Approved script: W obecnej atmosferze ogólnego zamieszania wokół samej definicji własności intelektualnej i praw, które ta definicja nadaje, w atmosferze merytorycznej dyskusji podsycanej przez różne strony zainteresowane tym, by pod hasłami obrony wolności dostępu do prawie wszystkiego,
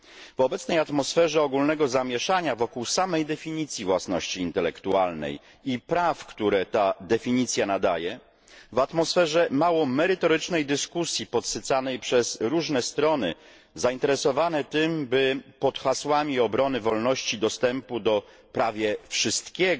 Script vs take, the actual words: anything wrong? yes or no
yes